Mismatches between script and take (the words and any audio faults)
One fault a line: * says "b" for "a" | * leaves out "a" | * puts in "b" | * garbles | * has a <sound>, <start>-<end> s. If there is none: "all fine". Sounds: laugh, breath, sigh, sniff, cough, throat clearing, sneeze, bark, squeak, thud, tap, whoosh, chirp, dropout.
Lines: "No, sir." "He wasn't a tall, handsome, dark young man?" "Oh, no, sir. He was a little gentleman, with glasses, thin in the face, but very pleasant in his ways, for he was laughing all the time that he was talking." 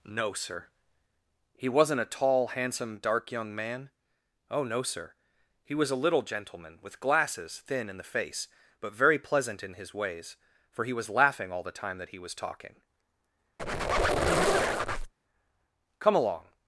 * has a squeak, 13.6-15.1 s
* puts in "Come along"